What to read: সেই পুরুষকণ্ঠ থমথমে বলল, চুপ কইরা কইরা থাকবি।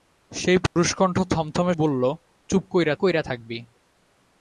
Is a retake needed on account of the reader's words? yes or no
no